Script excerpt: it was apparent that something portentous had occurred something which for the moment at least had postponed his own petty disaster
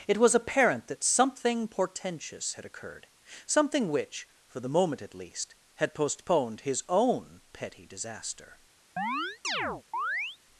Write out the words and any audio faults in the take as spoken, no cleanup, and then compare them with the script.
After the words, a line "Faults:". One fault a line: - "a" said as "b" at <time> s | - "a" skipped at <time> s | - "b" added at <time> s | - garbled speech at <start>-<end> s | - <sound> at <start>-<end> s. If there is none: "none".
it was apparent that something portentous had occurred something which for the moment at least had postponed his own petty disaster
Faults:
- chirp at 9.0-10.4 s